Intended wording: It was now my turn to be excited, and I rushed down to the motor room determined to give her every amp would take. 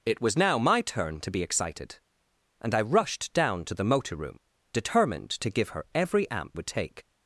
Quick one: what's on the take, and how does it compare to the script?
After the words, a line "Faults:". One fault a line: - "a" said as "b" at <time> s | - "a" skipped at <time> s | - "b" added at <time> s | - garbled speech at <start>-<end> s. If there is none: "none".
It was now my turn to be excited, and I rushed down to the motor room determined to give her every amp would take.
Faults:
none